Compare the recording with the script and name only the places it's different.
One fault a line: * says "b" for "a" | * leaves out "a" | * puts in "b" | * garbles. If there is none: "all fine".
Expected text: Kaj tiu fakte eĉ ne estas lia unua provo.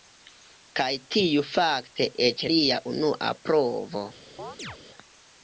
* leaves out "ne estas"